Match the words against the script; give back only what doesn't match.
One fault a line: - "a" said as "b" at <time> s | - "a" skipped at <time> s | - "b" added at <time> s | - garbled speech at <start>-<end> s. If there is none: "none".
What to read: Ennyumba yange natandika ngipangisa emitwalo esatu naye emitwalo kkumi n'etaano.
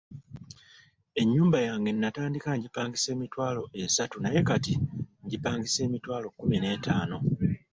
- "kati ngipangisa" added at 4.5 s